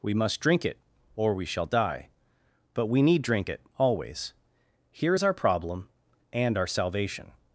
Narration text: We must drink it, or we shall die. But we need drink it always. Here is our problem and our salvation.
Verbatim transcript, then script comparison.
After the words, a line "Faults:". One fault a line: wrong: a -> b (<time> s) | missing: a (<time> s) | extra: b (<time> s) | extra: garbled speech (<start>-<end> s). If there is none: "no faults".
We must drink it, or we shall die. But we need drink it always. Here is our problem and our salvation.
Faults:
no faults